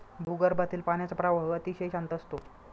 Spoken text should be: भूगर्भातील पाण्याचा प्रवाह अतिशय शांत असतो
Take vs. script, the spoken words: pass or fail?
pass